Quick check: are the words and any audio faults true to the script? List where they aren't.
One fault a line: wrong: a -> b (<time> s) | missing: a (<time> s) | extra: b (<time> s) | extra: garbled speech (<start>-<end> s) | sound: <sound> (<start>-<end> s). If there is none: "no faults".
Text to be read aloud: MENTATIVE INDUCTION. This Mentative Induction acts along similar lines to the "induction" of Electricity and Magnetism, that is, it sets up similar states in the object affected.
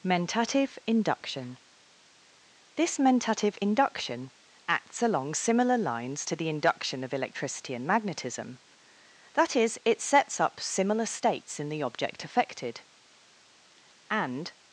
extra: And (14.1 s)